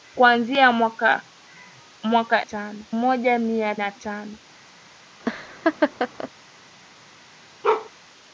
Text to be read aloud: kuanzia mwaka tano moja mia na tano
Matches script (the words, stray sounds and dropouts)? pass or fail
fail